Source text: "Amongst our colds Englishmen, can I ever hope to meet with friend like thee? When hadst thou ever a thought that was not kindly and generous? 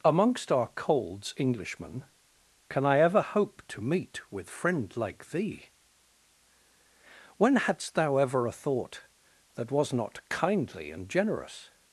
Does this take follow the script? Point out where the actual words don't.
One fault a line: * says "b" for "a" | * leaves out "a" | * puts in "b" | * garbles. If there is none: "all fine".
all fine